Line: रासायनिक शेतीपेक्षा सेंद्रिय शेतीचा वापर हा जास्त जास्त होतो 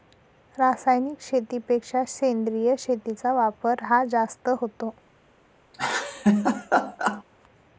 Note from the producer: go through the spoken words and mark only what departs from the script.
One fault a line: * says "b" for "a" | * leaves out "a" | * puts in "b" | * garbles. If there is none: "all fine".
* leaves out "जास्त"